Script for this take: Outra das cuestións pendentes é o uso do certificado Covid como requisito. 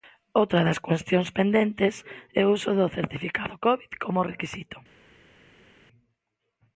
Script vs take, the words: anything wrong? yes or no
no